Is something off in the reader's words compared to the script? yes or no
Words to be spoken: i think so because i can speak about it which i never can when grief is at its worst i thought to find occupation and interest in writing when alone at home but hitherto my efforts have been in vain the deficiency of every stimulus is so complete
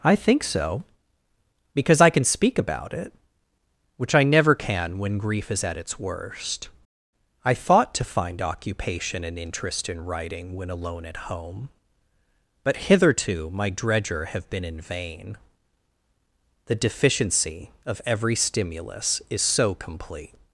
yes